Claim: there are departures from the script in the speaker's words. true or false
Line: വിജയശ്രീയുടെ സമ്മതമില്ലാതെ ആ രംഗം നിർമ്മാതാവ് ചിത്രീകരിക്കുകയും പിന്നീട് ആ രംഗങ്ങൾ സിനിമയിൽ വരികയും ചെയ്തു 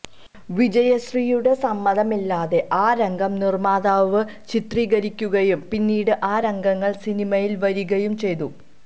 false